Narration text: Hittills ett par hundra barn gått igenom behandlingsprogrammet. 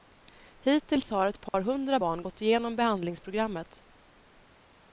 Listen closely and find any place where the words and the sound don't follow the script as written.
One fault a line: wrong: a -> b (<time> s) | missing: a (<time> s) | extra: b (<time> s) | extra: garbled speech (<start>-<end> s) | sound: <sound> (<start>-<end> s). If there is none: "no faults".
extra: har (1.1 s)
sound: dropout (1.5-1.5 s)